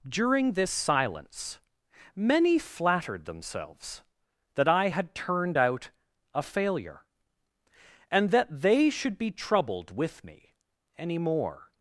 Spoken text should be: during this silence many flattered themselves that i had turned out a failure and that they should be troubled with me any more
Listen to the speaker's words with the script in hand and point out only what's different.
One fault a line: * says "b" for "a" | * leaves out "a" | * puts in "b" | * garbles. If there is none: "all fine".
all fine